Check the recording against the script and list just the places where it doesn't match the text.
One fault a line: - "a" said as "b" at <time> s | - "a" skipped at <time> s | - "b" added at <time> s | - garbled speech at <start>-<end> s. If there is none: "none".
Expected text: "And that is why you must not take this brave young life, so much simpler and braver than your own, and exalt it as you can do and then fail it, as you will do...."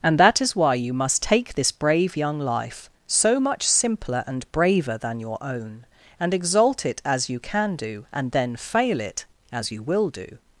- "not" skipped at 1.2 s